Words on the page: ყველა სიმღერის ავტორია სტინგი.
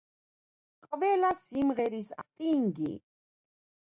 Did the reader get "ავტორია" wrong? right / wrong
wrong